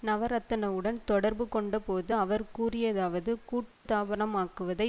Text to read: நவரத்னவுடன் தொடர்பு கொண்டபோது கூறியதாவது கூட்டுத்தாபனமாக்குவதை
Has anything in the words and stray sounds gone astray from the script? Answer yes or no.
yes